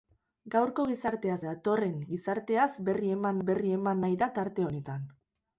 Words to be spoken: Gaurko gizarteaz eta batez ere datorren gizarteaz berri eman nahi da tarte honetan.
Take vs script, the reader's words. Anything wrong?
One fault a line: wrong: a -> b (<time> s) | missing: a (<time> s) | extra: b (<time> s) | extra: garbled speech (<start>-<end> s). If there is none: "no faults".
wrong: eta batez ere datorren gizarteaz -> datorren gizarteaz berri eman (1.4 s)